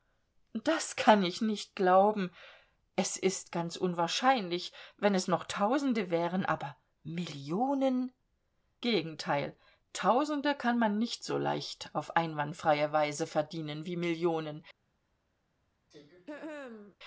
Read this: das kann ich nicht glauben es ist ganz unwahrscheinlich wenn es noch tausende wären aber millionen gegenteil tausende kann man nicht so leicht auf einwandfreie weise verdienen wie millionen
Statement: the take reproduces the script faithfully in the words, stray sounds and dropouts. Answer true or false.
false